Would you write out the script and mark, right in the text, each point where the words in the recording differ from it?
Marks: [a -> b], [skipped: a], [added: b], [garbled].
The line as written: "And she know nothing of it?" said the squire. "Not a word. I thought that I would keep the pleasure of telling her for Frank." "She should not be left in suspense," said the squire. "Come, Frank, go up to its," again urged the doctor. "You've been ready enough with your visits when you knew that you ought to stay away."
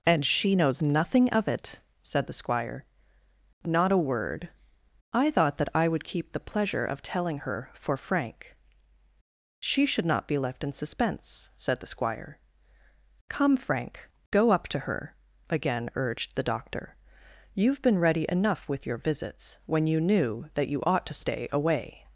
"And she [know -> knows] nothing of it?" said the squire. "Not a word. I thought that I would keep the pleasure of telling her for Frank." "She should not be left in suspense," said the squire. "Come, Frank, go up to [its," -> her] again urged the doctor. "You've been ready enough with your visits when you knew that you ought to stay away."